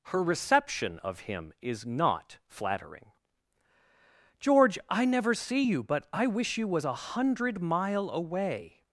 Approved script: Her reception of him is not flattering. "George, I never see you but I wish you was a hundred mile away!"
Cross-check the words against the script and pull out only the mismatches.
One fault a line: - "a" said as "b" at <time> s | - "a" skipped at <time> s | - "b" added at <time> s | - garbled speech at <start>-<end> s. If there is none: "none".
none